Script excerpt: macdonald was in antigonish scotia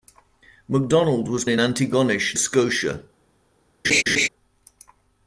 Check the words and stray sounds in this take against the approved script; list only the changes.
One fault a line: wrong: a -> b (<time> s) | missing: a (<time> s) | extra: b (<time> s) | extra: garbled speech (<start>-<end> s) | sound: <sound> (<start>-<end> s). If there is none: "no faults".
sound: laugh (3.8-4.3 s)